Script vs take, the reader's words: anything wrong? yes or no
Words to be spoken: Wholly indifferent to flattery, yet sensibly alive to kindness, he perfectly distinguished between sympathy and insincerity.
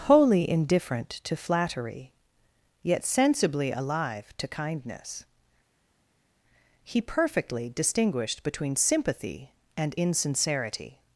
no